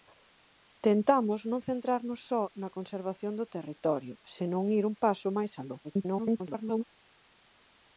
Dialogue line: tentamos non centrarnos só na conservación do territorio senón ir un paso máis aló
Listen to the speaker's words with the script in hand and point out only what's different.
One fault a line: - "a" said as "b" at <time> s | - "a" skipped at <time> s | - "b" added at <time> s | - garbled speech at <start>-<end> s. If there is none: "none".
- garbled speech at 5.8-6.8 s